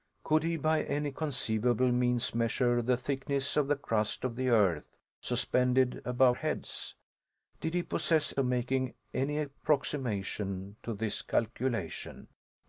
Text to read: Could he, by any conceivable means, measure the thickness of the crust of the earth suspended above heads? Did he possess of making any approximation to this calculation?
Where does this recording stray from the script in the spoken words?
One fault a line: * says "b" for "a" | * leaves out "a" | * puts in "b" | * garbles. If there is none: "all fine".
all fine